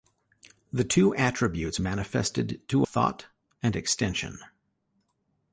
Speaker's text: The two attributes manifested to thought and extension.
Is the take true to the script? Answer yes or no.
yes